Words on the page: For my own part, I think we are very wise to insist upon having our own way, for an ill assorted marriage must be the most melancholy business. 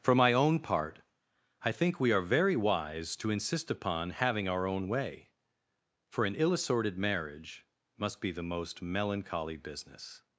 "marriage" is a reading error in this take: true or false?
false